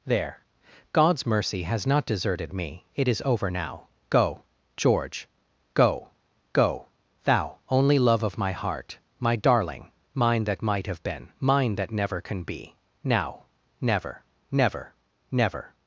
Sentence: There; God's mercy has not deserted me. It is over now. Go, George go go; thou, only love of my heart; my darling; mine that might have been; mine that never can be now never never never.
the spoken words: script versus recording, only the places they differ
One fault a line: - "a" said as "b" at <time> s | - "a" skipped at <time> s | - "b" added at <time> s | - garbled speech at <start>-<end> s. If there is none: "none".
none